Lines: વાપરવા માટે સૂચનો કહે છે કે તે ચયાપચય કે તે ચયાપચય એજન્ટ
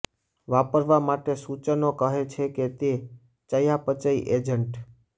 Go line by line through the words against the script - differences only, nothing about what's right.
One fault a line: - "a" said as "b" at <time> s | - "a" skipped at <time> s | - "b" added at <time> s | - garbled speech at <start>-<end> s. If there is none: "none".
- "કે તે ચયાપચય" skipped at 4.1 s